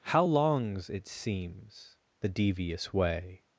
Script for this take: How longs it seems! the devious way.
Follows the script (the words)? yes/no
yes